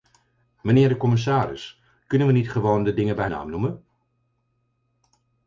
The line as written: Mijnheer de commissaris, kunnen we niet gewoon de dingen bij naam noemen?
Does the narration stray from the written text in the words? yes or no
no